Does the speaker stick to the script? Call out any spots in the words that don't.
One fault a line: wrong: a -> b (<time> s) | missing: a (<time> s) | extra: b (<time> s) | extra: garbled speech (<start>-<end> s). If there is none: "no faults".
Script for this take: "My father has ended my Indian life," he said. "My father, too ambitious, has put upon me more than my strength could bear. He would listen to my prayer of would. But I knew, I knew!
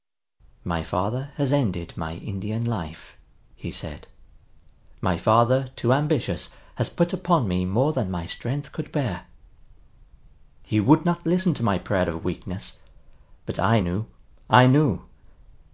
extra: not (11.1 s)
wrong: would -> weakness (12.2 s)